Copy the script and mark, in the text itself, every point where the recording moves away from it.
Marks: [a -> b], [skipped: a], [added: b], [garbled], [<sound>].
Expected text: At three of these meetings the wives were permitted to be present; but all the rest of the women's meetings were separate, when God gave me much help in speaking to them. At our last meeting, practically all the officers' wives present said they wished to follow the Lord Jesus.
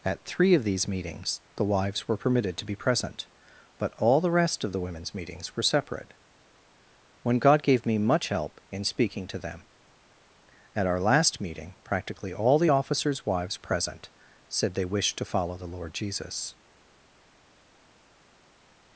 At three of these meetings the wives were permitted to be present; but all the rest of the women's meetings were separate, when God gave me much help in speaking to them. At our last meeting, practically all the officers' wives present said they wished to follow the Lord Jesus.